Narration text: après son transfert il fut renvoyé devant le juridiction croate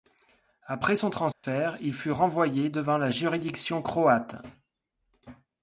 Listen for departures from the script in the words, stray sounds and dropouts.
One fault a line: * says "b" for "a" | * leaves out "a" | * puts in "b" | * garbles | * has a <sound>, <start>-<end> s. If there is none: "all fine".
* has a dropout, 1.3-1.4 s
* says "la" for "le"